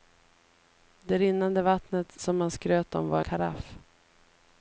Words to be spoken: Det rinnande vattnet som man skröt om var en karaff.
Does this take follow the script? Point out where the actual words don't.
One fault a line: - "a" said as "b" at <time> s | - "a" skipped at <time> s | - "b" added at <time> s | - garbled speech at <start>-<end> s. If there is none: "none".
- "en" skipped at 3.2 s